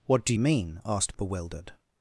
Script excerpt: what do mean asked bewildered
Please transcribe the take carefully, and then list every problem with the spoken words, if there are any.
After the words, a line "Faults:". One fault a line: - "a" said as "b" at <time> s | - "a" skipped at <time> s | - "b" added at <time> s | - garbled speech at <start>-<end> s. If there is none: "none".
what do mean asked bewildered
Faults:
none